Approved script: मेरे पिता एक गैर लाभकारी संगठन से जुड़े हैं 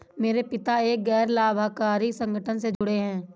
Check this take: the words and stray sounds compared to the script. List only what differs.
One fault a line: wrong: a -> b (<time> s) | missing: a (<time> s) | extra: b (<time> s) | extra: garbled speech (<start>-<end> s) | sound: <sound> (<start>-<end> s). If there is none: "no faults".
sound: dropout (2.7-2.8 s)